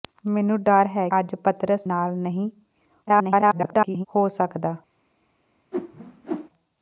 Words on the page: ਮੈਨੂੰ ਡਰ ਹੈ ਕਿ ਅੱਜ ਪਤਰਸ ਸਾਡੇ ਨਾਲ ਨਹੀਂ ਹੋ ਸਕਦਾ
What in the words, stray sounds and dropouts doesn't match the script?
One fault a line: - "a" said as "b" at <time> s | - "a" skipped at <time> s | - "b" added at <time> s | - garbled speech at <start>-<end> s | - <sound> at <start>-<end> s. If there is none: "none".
- "ਕਿ" skipped at 1.1 s
- "ਸਾਡੇ" skipped at 1.9 s
- garbled speech at 3.1-4.1 s
- whoosh at 5.7-6.5 s